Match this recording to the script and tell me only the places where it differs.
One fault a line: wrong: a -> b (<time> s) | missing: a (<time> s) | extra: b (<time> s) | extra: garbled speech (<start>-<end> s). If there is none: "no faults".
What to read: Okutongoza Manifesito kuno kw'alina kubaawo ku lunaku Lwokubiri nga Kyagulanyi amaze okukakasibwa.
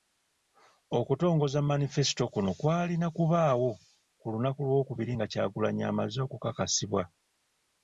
no faults